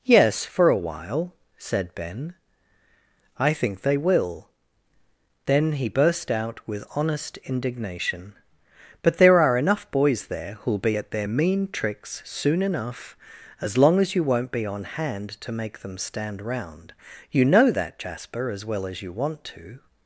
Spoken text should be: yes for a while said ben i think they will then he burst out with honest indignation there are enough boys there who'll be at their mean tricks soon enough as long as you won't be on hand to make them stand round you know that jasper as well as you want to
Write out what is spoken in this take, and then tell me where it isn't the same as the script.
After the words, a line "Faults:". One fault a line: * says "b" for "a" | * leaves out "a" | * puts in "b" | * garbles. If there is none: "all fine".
yes for a while said ben i think they will then he burst out with honest indignation but there are enough boys there who'll be at their mean tricks soon enough as long as you won't be on hand to make them stand round you know that jasper as well as you want to
Faults:
* puts in "but"